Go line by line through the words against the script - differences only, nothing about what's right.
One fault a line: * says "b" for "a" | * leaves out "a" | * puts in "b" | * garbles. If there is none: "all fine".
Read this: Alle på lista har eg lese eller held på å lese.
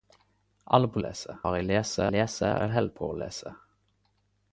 * says "lese" for "lista"
* puts in "lese"